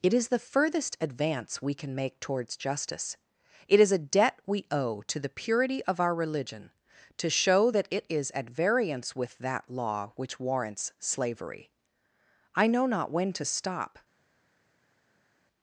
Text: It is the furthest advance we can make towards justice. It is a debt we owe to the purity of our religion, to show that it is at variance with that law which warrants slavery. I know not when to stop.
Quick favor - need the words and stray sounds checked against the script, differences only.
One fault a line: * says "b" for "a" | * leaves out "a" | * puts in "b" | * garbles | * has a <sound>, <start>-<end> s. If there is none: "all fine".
all fine